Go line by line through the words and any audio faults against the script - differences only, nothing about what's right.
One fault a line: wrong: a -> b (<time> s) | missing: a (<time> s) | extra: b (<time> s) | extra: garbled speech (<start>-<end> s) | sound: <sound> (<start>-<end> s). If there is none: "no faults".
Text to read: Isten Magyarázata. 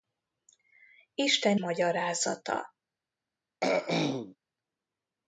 sound: throat clearing (3.6-4.4 s)